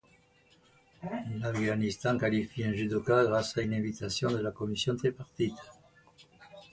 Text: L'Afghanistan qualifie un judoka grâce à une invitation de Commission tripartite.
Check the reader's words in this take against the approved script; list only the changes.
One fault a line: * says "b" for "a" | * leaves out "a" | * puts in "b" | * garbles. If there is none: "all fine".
* puts in "la"